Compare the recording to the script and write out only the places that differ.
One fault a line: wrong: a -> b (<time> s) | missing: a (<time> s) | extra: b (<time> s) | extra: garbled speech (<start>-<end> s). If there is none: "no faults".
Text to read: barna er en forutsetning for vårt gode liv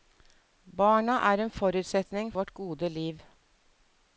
missing: for (2.3 s)